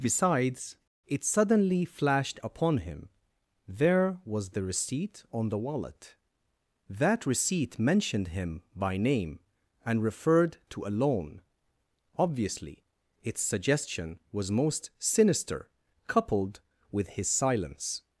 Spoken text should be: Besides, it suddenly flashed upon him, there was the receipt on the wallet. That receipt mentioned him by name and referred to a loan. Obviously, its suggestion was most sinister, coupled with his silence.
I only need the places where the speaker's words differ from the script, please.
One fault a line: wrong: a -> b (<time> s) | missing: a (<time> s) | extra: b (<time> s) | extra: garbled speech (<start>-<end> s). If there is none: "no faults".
no faults